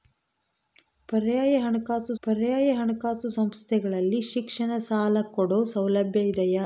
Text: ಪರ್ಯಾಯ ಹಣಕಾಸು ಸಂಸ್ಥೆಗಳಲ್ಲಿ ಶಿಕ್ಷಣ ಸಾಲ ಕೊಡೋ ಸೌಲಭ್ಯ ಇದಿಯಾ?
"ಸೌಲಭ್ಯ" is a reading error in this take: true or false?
false